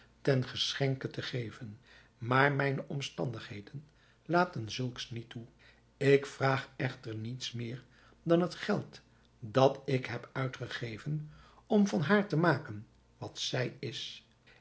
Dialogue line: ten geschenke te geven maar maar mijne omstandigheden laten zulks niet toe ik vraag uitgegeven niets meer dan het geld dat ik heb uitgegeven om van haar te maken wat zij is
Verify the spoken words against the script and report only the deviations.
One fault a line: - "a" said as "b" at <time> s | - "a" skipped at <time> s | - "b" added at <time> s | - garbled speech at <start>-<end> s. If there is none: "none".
- "maar" skipped at 2.5 s
- "uitgegeven" said as "echter" at 6.8 s